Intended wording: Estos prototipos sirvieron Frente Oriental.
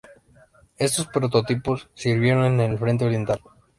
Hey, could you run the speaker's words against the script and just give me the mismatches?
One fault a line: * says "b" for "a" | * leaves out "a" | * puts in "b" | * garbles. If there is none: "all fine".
* puts in "en el"